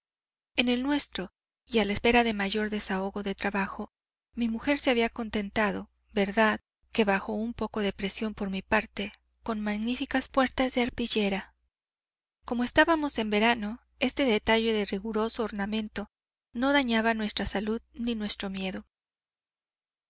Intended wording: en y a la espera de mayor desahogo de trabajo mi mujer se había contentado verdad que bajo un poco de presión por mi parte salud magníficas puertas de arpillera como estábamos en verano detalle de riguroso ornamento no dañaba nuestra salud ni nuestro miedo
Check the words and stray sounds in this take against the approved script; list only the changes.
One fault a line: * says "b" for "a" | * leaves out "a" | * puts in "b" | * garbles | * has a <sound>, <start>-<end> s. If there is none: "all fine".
* puts in "el nuestro"
* says "con" for "salud"
* puts in "este"